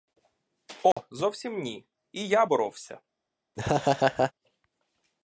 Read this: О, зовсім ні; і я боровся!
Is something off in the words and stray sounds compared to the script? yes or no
yes